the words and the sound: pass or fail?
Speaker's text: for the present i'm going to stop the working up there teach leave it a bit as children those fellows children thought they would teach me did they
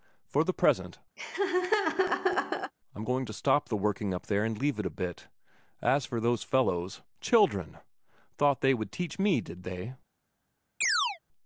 fail